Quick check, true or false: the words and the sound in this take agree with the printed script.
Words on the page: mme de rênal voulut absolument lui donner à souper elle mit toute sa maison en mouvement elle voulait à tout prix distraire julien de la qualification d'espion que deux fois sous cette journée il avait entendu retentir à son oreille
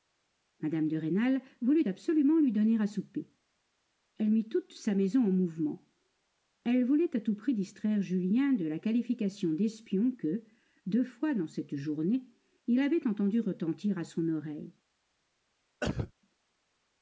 false